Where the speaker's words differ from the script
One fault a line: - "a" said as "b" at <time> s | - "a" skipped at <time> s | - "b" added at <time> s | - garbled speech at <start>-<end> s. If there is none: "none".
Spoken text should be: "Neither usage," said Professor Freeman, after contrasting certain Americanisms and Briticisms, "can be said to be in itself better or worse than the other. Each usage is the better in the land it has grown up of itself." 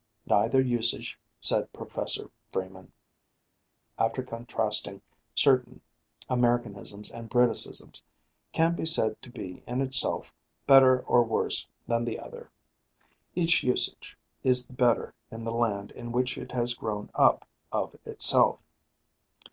- "in which" added at 15.9 s